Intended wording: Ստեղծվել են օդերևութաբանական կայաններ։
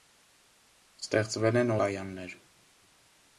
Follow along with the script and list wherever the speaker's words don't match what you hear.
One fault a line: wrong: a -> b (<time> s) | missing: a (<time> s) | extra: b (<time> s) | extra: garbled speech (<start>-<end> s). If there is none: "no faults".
missing: օդերևութաբանական (1.8 s)